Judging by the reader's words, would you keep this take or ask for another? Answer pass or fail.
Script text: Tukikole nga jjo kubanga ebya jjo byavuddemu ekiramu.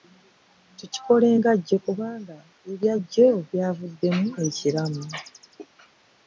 pass